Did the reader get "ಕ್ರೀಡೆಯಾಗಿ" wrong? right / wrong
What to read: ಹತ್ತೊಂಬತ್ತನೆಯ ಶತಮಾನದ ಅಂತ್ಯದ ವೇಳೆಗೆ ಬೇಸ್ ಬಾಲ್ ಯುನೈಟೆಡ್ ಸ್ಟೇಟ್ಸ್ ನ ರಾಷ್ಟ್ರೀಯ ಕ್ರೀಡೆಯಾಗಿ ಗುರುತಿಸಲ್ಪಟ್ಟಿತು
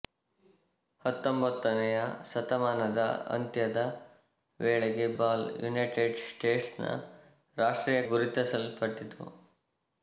wrong